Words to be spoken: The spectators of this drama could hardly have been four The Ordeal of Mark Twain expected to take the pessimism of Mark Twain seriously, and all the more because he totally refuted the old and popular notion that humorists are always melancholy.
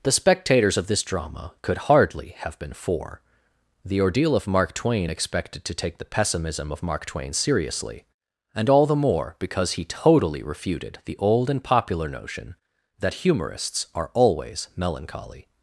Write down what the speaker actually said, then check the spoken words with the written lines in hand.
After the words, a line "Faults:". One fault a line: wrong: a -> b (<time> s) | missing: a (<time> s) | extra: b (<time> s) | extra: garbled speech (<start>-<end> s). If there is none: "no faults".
The spectators of this drama could hardly have been four The Ordeal of Mark Twain expected to take the pessimism of Mark Twain seriously, and all the more because he totally refuted the old and popular notion that humorists are always melancholy.
Faults:
no faults